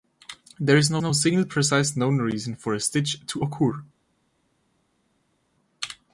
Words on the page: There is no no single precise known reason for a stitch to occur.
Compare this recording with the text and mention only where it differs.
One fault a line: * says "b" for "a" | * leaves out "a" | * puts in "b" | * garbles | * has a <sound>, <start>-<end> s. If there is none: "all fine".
all fine